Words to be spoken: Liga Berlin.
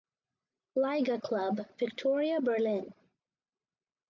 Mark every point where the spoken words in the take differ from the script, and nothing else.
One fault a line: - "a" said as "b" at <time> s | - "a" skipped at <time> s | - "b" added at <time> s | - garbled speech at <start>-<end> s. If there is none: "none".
- "club Viktoria" added at 1.2 s